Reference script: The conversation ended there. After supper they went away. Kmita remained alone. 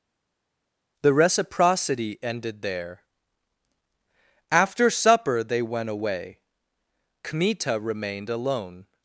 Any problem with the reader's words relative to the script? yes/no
yes